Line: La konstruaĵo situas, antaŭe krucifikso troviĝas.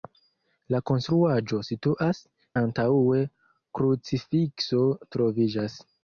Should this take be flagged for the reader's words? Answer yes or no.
no